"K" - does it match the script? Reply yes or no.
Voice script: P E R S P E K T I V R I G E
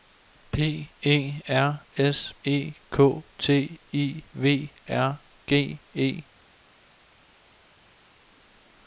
yes